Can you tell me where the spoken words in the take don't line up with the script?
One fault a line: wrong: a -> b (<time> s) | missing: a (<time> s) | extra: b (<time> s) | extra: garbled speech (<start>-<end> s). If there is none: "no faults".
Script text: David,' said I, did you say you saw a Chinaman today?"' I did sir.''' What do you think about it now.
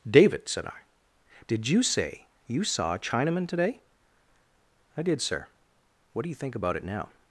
no faults